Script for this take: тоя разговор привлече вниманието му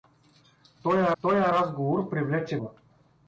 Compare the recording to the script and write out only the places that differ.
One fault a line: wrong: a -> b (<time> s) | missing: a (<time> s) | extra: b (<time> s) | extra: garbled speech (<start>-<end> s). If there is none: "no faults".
extra: тоя (1.2 s)
missing: вниманието (2.6 s)